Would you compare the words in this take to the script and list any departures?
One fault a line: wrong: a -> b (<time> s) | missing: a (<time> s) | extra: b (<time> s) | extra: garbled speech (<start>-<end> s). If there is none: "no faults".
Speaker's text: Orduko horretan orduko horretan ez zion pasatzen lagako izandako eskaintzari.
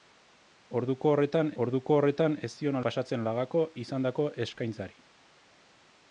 no faults